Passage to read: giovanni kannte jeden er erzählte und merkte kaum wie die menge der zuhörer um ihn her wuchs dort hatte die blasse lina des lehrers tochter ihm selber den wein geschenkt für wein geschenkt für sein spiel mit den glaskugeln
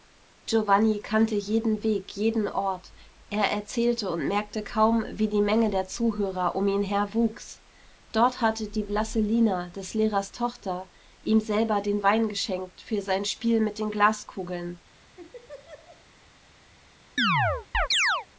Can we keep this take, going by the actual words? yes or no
no